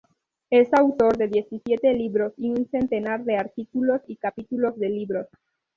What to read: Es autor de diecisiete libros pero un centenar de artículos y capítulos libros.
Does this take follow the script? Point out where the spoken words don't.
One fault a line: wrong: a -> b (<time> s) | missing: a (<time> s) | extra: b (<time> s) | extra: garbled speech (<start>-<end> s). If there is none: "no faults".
wrong: pero -> y (2.4 s)
extra: de (4.8 s)